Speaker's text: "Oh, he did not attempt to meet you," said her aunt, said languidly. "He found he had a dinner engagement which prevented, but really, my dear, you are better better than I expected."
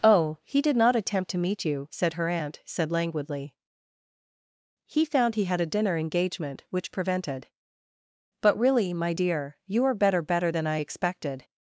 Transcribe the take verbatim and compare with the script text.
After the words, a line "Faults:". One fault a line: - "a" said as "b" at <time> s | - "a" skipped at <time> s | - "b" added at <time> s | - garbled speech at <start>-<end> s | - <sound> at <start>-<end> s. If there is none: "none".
"Oh, he did not attempt to meet you," said her aunt, said languidly. "He found he had a dinner engagement which prevented, but really, my dear, you are better better than I expected."
Faults:
none